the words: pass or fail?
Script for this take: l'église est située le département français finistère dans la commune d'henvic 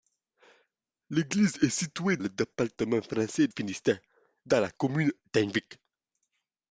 pass